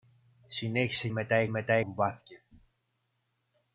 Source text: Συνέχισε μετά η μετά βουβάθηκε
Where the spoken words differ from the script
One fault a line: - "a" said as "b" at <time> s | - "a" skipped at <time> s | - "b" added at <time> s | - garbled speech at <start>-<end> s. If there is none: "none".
none